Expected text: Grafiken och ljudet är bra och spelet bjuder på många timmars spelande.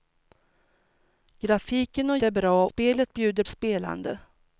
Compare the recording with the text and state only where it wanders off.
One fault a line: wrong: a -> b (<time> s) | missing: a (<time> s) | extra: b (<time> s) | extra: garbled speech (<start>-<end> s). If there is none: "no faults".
missing: ljudet (2.2 s)
missing: och (2.7 s)
missing: på många timmars (3.4 s)